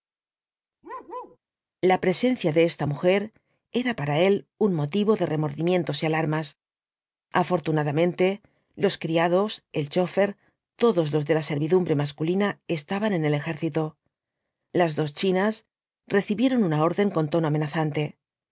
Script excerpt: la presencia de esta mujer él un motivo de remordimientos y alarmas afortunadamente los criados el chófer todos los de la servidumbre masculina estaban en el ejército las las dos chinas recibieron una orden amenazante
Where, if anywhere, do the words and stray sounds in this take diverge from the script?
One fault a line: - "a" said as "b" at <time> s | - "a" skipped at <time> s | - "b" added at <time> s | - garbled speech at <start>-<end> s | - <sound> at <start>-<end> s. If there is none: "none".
- bark at 0.8-1.4 s
- "era para" added at 3.7 s
- "las" skipped at 15.0 s
- "con tono" added at 17.1 s